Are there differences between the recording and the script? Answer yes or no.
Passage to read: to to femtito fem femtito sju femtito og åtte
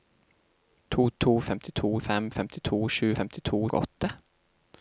no